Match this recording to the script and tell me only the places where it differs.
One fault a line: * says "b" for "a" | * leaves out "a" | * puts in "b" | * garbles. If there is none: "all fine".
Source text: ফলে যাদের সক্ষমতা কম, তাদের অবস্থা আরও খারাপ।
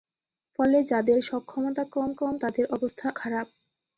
* puts in "কম"
* leaves out "আরও"